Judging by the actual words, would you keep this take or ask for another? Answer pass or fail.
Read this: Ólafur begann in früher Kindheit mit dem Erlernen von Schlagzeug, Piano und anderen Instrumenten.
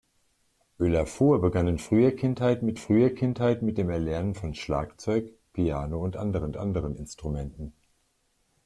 fail